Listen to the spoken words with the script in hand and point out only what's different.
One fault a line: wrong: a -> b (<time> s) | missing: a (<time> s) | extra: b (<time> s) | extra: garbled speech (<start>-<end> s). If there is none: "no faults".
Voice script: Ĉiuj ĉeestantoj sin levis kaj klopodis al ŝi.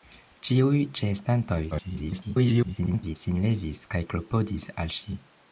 extra: garbled speech (1.7-3.2 s)